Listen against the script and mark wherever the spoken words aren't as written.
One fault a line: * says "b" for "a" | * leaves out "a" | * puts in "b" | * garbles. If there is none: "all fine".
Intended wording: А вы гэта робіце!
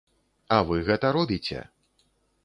all fine